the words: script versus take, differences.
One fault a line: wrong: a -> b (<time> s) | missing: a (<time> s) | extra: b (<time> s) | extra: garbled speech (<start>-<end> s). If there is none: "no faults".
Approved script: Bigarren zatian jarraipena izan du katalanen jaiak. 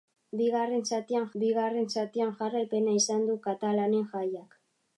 extra: bigarren zatian (1.4 s)